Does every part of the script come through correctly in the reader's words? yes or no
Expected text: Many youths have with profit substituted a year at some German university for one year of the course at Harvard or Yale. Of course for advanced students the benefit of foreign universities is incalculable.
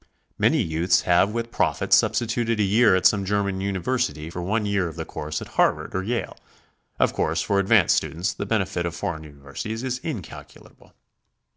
yes